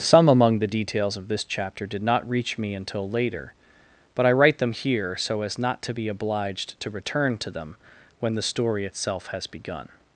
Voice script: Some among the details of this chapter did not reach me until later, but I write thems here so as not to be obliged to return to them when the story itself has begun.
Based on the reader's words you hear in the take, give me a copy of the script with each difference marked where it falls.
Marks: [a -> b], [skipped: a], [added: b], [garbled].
Some among the details of this chapter did not reach me until later, but I write [thems -> them] here so as not to be obliged to return to them when the story itself has begun.